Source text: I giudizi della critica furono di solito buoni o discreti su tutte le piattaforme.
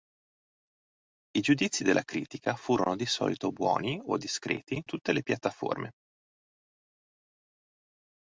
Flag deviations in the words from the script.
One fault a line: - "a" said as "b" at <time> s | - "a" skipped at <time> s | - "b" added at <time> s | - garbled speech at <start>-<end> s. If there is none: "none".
- "su" skipped at 4.8 s